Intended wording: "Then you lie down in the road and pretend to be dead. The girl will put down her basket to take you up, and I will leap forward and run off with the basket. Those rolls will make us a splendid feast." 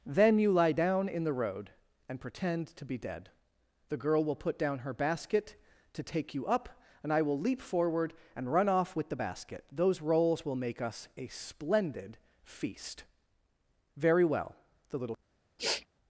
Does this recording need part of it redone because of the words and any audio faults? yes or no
yes